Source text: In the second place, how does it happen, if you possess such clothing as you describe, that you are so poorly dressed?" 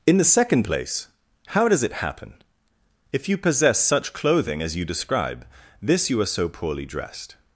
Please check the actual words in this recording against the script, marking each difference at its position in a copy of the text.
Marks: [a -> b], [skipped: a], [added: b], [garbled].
In the second place, how does it happen, if you possess such clothing as you describe, [that -> this] you are so poorly dressed?"